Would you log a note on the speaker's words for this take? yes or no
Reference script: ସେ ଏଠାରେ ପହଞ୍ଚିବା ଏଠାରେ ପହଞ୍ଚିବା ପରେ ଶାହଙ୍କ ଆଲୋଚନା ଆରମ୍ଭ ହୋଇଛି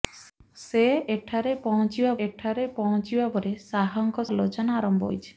no